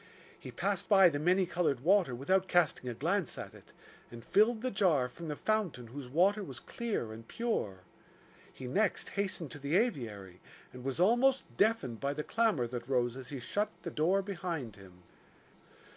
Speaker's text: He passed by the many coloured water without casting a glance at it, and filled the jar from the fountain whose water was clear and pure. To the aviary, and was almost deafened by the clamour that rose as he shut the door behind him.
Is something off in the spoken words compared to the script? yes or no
yes